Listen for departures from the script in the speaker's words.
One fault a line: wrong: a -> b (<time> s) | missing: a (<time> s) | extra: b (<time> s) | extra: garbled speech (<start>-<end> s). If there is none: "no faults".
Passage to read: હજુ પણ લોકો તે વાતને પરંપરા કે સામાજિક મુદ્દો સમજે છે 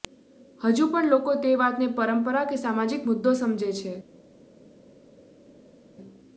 no faults